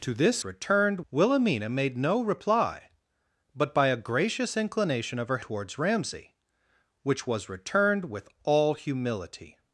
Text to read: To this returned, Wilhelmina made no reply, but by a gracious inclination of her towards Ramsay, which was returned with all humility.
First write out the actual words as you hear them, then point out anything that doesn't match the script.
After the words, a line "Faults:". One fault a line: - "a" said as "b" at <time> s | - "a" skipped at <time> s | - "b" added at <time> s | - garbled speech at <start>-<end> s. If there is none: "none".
To this returned, Wilhelmina made no reply, but by a gracious inclination of her towards Ramsay, which was returned with all humility.
Faults:
none